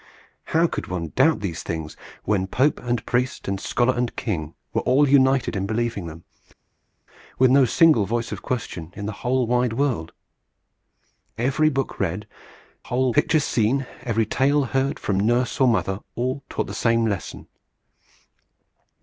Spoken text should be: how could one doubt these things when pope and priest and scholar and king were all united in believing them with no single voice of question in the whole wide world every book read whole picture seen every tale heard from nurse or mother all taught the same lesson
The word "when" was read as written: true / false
true